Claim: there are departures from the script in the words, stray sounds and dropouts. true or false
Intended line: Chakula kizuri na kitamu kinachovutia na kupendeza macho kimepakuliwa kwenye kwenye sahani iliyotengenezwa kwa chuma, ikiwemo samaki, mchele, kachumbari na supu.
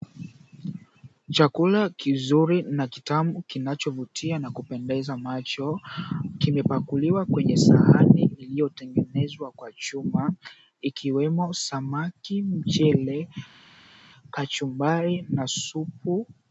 true